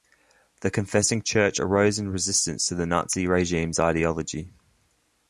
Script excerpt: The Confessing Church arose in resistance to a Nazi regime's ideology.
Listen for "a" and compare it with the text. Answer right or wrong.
wrong